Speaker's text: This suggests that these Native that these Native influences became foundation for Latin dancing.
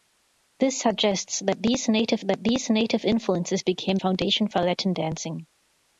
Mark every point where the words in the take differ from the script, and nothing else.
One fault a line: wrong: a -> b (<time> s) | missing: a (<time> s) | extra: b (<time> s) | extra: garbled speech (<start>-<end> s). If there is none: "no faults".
no faults